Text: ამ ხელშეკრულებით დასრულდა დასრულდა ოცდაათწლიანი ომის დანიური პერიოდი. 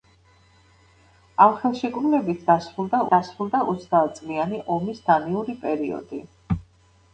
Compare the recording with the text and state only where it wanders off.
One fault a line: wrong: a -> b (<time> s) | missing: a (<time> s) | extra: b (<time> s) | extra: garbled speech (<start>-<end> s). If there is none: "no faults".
no faults